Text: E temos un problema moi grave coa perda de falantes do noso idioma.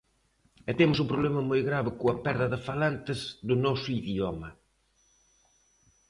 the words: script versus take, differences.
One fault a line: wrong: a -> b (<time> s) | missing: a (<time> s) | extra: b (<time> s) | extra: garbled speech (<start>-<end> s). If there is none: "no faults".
no faults